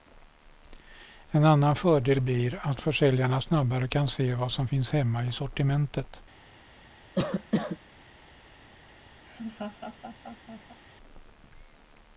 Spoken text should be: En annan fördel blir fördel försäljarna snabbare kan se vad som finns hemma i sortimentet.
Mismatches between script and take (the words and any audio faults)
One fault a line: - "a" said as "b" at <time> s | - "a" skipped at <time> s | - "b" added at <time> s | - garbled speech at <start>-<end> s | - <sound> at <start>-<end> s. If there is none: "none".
- "fördel" said as "att" at 2.6 s
- cough at 7.2-7.8 s
- laugh at 9.3-10.8 s